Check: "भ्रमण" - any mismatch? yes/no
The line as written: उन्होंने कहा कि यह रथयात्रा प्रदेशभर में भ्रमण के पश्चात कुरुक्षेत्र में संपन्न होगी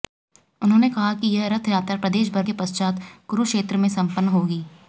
yes